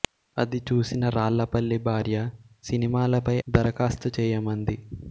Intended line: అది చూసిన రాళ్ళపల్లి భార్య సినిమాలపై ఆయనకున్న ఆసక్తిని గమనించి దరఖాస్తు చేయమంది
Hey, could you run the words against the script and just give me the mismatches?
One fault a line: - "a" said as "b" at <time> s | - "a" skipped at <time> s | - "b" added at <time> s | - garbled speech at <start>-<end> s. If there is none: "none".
- "ఆయనకున్న ఆసక్తిని గమనించి" skipped at 3.4 s